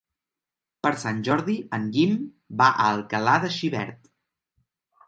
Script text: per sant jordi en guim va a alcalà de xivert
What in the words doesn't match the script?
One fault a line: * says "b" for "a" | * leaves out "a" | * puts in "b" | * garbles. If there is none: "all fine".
all fine